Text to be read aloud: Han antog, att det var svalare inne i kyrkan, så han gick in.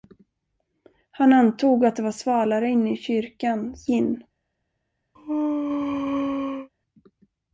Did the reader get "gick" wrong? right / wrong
wrong